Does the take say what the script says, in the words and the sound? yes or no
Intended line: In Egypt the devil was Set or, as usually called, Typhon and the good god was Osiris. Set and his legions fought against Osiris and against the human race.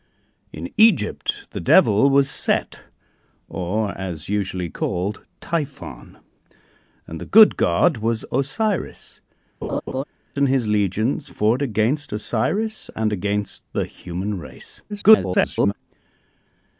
no